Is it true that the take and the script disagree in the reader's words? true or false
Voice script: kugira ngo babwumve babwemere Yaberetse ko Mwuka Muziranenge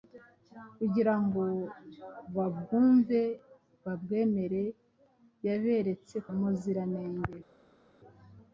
true